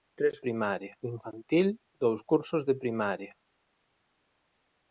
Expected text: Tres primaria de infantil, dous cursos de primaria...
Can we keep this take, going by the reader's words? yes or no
yes